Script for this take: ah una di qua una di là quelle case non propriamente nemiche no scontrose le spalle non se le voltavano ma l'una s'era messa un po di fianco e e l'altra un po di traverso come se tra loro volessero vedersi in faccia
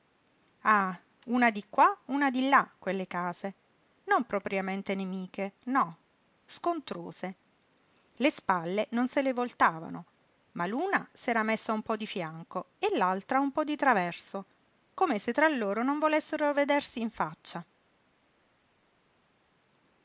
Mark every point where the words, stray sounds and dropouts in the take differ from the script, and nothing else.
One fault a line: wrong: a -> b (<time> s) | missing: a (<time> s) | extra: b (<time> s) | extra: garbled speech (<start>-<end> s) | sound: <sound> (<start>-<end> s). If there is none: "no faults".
missing: e (13.0 s)
extra: non (15.8 s)